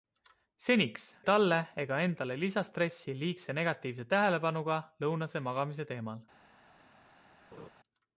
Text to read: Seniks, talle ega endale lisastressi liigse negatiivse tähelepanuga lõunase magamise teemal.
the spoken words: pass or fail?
pass